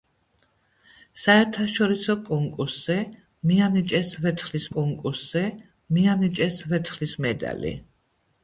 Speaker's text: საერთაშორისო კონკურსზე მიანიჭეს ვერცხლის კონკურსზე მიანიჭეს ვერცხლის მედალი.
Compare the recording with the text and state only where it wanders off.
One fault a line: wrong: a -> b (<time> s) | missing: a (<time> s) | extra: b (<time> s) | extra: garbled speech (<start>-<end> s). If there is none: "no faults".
no faults